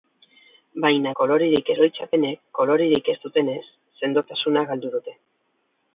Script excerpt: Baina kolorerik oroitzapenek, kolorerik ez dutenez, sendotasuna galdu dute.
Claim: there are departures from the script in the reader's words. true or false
false